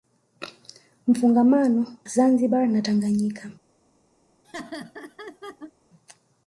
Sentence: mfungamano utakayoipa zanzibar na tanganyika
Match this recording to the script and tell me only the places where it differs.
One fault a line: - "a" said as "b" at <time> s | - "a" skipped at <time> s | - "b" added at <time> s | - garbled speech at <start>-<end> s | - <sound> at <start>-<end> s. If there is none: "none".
- "utakayoipa" skipped at 2.0 s
- laugh at 4.4-5.7 s